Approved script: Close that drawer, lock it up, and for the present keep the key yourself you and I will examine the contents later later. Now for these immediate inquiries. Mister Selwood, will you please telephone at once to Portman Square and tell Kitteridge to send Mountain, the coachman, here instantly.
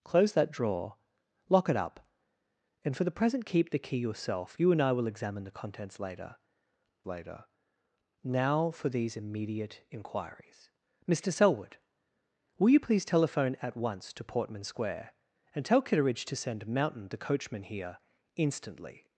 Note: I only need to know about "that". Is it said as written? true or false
true